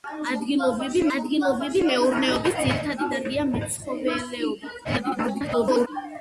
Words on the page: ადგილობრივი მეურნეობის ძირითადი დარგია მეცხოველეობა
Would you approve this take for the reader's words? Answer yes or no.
no